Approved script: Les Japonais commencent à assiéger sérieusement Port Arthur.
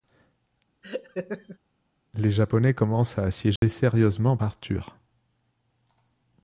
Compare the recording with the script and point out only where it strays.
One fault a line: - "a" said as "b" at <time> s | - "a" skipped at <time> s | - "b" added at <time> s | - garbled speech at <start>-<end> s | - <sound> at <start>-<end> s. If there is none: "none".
- laugh at 0.8-1.6 s
- dropout at 3.6-3.6 s
- "Port" skipped at 4.4 s